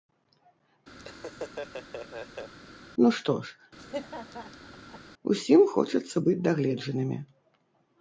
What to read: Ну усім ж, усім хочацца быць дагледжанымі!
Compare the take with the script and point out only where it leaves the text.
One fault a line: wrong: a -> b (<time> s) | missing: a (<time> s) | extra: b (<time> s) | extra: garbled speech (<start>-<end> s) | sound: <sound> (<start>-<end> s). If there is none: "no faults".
sound: laugh (1.0-2.5 s)
wrong: усім -> што (3.2 s)
sound: laugh (3.8-5.0 s)